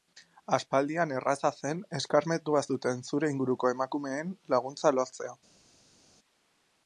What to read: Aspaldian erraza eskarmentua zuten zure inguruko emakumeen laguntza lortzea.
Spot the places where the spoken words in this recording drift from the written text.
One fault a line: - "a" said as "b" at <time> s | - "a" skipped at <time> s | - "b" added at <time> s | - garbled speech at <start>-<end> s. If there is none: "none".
- "zen" added at 1.6 s